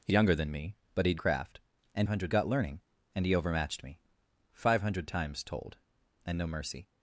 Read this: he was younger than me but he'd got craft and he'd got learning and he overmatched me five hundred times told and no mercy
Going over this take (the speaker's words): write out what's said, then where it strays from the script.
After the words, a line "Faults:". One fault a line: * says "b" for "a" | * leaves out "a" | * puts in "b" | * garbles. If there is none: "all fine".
he younger than me but he'd craft and hundred got learning and he overmatched me five hundred times told and no mercy
Faults:
* leaves out "was"
* leaves out "got"
* says "hundred" for "he'd"